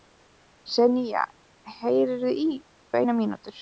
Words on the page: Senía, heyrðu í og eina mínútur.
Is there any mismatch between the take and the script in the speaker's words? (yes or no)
no